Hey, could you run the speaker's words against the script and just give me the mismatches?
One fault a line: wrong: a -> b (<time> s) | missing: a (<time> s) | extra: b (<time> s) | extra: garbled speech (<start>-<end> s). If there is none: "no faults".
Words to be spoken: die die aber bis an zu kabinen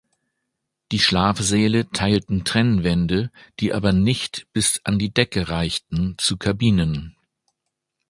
extra: schlafsäle teilten trennwände (1.0 s)
extra: nicht (3.9 s)
extra: die decke reichten (5.0 s)